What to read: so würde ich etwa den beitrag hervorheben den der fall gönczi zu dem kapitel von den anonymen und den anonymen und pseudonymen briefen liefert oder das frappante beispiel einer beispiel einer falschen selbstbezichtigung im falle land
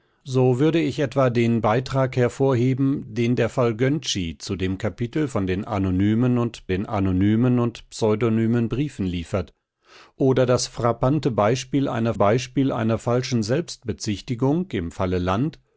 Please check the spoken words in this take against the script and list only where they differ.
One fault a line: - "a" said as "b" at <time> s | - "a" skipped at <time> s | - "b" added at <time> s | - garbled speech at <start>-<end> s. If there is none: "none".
none